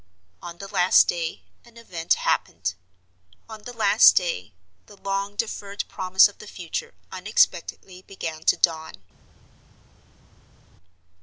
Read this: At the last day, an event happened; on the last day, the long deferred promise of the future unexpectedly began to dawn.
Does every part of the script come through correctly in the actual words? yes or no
no